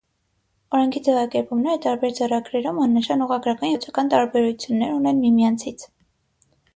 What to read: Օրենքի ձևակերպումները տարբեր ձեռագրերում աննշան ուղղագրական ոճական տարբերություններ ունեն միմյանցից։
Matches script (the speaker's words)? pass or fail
pass